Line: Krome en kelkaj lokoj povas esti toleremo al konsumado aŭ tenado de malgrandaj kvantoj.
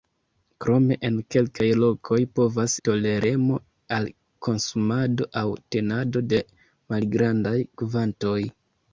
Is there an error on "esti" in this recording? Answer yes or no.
yes